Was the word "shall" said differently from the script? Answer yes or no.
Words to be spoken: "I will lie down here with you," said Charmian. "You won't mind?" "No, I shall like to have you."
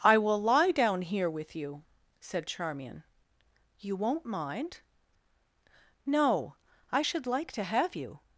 yes